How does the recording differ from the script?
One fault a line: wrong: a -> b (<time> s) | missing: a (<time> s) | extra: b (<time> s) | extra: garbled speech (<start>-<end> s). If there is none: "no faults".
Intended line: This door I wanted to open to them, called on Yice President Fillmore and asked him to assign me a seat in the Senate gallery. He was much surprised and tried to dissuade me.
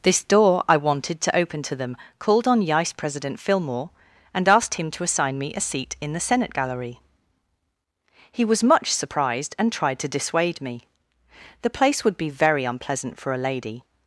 extra: The place would be very unpleasant for a lady (11.6 s)